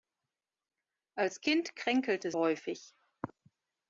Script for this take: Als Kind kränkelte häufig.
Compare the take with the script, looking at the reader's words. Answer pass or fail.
pass